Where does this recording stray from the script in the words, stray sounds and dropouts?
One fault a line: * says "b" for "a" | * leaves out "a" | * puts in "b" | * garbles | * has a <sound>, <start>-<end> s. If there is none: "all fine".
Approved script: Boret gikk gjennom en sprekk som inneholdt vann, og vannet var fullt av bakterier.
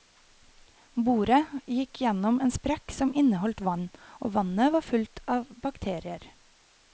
all fine